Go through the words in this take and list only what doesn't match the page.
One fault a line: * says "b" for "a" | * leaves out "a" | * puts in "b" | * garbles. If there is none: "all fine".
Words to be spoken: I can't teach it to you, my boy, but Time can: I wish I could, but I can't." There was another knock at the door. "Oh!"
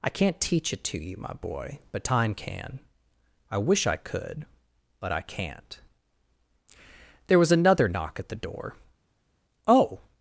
all fine